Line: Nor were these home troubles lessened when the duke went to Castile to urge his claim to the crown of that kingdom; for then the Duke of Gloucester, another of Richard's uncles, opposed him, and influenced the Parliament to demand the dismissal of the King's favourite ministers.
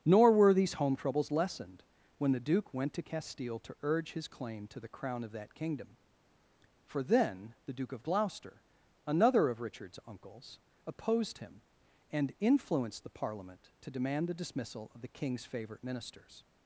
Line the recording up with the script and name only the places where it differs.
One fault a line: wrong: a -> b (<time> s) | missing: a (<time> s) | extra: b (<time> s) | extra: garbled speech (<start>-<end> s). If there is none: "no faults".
no faults